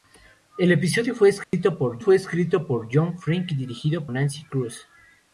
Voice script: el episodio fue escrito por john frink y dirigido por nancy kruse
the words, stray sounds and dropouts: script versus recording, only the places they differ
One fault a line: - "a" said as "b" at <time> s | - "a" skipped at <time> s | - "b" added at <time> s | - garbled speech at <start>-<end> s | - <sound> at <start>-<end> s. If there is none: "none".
- dropout at 1.4-1.5 s
- "fue escrito por" added at 2.0 s
- "por" skipped at 4.1 s